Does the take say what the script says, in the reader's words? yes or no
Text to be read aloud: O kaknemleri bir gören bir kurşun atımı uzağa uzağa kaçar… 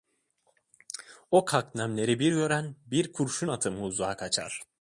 no